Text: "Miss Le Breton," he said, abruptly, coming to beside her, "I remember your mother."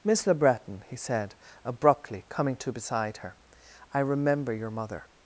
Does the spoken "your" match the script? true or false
true